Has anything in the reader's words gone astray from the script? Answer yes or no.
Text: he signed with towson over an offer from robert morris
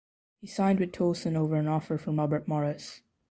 no